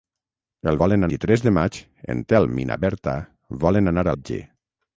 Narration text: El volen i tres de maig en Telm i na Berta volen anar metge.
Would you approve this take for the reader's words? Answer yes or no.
yes